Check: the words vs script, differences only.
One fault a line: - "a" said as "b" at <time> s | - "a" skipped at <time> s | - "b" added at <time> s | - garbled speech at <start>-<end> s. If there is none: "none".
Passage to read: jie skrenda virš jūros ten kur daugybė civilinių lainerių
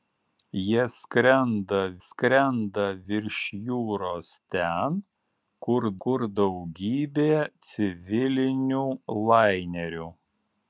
- "skrenda" added at 2.0 s
- "kur" added at 6.1 s